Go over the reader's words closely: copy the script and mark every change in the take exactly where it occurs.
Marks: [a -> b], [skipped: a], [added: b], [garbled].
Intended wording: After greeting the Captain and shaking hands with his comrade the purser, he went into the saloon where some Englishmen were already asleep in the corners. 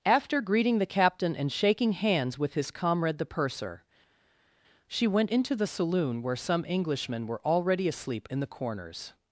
After greeting the Captain and shaking hands with his comrade the purser, [he -> she] went into the saloon where some Englishmen were already asleep in the corners.